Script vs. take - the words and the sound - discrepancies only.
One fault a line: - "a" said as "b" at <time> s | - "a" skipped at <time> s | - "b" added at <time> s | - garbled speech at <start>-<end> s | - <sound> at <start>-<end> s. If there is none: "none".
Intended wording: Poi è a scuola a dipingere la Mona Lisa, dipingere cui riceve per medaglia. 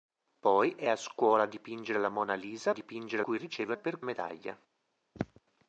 - throat clearing at 5.1-5.4 s